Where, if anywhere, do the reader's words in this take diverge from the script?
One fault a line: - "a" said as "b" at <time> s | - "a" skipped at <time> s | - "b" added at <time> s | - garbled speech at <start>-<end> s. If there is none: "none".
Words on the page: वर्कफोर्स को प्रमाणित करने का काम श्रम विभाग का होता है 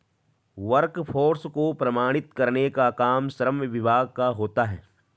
none